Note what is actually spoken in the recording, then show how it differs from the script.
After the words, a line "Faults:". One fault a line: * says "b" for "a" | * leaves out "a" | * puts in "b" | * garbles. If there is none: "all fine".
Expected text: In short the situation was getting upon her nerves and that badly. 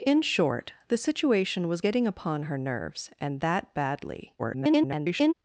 In short the situation was getting upon her nerves and that badly. [garbled]
Faults:
* garbles